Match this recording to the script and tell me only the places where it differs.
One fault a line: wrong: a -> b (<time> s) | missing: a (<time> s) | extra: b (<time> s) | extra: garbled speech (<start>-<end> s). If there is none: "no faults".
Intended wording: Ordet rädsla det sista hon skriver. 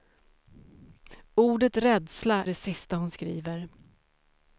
no faults